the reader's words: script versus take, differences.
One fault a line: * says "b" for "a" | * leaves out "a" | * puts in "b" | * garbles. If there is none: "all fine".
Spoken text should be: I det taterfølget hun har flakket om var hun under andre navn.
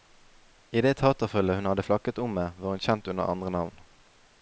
* says "hadde" for "har"
* puts in "med"
* puts in "kjent"